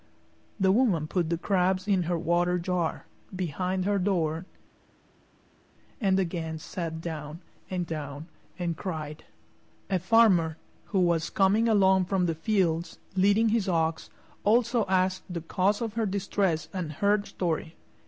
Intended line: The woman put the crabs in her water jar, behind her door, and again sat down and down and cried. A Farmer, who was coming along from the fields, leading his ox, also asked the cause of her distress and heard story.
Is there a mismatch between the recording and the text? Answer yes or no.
no